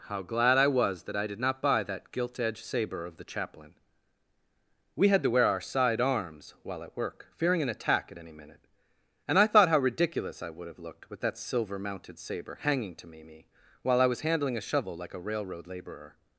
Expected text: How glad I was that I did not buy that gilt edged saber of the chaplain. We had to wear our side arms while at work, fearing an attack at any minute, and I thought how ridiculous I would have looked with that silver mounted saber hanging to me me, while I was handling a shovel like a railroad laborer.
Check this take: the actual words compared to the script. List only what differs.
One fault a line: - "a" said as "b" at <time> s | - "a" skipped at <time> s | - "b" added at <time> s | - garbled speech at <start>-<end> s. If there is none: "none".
none